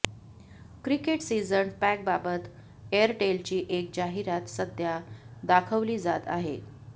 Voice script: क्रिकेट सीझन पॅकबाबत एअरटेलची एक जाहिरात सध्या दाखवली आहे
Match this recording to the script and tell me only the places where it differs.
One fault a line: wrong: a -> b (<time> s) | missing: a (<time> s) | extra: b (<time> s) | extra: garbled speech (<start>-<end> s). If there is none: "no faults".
extra: जात (6.0 s)